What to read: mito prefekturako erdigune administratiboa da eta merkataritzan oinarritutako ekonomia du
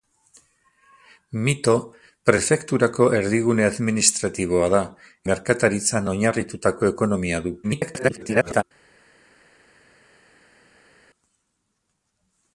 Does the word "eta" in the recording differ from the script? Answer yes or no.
yes